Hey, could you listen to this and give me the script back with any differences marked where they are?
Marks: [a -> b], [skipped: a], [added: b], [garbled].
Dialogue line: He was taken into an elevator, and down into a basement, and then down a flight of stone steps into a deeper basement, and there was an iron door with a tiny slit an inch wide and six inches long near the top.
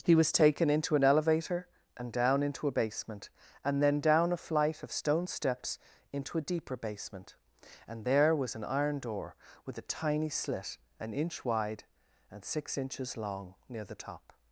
He was taken into an elevator, and down into a basement, and then down a flight of stone steps into a deeper basement, and there was an iron door with a tiny slit an inch wide and six inches long near the top.